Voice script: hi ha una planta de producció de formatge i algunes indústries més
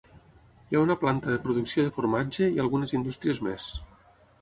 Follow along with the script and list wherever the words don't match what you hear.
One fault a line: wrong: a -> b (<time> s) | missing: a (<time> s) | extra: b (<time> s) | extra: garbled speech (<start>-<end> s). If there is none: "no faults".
no faults